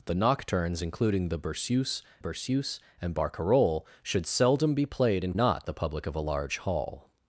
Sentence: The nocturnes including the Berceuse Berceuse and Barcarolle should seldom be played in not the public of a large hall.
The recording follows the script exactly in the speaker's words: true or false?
true